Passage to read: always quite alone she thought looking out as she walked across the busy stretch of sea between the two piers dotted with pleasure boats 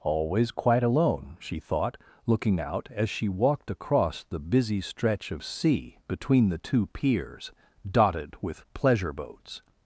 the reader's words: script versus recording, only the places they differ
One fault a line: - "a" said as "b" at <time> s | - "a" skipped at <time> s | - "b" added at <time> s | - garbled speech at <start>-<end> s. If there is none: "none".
none